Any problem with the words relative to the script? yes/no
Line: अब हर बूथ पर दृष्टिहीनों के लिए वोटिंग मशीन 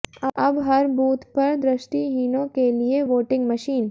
no